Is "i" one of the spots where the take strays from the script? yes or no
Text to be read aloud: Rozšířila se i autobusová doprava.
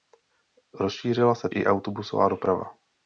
no